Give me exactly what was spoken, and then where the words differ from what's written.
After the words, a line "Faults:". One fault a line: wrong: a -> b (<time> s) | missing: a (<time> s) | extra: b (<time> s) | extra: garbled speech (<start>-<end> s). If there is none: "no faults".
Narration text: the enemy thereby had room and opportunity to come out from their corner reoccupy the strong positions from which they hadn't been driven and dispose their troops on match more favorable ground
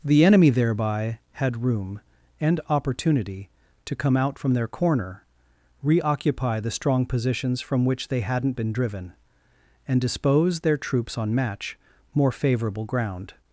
the enemy thereby had room and opportunity to come out from their corner reoccupy the strong positions from which they hadn't been driven and dispose their troops on match more favorable ground
Faults:
no faults